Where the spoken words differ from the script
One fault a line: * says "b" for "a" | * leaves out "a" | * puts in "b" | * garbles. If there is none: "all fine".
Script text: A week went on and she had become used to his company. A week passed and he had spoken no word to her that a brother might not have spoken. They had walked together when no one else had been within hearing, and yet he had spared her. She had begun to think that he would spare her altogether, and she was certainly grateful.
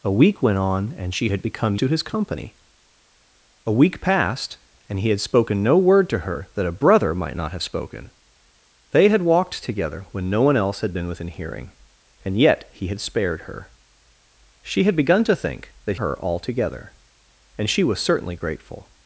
* leaves out "used"
* leaves out "he would spare"